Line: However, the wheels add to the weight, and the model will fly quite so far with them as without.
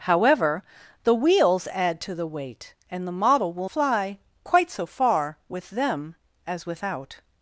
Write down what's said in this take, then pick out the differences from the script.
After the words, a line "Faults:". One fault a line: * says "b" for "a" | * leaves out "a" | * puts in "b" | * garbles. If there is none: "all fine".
However, the wheels add to the weight, and the model will fly quite so far with them as without.
Faults:
all fine